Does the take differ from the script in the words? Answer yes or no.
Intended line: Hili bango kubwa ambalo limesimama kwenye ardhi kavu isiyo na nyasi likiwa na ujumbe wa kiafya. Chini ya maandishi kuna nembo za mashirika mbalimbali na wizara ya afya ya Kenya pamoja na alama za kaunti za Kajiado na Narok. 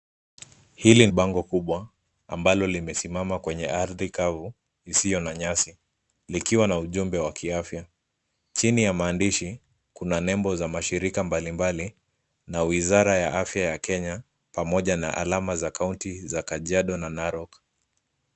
no